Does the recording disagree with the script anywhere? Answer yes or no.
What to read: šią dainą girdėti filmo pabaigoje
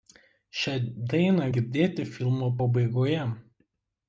no